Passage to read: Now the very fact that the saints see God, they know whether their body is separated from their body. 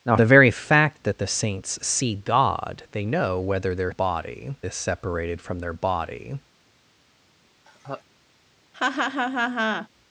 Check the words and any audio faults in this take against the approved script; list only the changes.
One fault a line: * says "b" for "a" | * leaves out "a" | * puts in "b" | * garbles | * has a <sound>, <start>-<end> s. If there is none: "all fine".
* has a laugh, 7.7-8.0 s
* has a laugh, 8.7-9.9 s